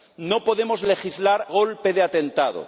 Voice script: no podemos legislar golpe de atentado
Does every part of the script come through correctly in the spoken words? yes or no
yes